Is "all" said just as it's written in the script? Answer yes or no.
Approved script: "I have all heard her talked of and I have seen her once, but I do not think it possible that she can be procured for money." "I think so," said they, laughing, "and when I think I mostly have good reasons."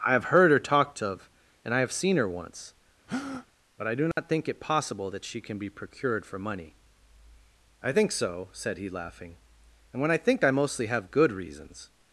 no